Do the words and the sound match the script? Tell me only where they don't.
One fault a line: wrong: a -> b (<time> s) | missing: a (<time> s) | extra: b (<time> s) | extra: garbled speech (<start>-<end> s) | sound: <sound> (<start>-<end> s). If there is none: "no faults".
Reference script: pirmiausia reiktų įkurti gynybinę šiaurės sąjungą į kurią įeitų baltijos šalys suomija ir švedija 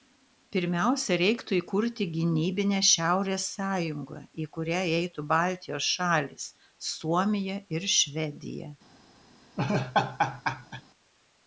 sound: laugh (9.6-10.8 s)